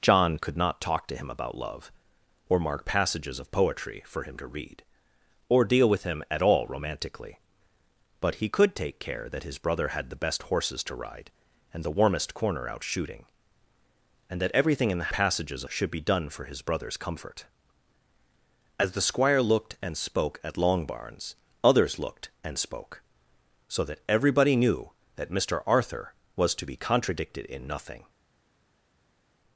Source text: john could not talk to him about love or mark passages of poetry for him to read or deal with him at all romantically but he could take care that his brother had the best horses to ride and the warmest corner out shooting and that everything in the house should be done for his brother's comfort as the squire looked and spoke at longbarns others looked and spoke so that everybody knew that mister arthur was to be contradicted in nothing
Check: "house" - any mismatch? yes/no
yes